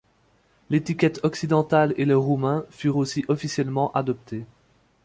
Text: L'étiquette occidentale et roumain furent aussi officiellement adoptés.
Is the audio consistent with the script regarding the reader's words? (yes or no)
no